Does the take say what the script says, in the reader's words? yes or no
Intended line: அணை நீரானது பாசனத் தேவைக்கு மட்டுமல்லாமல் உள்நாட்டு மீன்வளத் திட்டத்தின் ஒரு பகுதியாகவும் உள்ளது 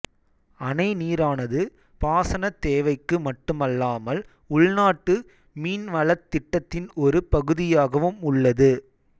yes